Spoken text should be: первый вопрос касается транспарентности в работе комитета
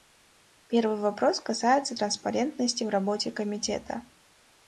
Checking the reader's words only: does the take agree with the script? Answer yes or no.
yes